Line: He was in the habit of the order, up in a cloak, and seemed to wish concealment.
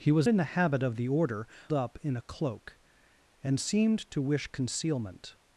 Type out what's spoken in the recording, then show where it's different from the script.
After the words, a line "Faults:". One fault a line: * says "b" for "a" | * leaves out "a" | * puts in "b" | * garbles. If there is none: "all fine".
He was in the habit of the order, up in a cloak, and seemed to wish concealment.
Faults:
all fine